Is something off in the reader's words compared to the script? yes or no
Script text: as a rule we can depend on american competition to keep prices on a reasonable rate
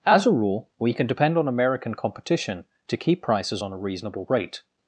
no